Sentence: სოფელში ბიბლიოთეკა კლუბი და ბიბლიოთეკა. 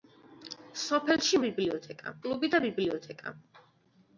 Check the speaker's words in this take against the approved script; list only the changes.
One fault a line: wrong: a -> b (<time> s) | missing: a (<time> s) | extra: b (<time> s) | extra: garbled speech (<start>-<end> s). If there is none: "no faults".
no faults